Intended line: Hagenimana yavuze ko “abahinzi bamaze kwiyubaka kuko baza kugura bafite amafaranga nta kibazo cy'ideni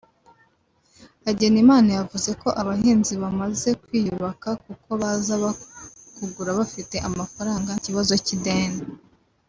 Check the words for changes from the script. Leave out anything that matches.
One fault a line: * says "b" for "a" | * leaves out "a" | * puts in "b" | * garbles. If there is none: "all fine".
* leaves out "nta"